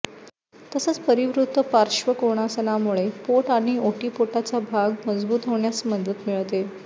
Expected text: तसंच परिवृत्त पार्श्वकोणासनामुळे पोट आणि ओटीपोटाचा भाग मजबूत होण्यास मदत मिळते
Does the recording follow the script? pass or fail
pass